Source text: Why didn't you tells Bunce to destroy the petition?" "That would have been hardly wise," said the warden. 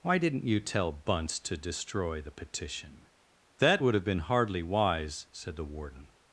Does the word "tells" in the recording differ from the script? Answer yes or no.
yes